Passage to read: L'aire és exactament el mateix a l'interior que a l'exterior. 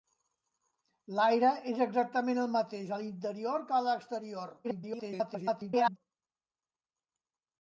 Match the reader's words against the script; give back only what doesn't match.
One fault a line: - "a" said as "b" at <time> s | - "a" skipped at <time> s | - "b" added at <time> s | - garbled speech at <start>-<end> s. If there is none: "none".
- garbled speech at 4.6-6.0 s